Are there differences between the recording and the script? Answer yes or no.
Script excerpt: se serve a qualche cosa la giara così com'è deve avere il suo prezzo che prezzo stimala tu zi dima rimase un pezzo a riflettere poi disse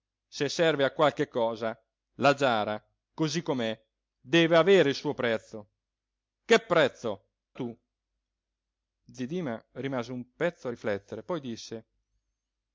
yes